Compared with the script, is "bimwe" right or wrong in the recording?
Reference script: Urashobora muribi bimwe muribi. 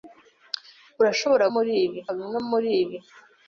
right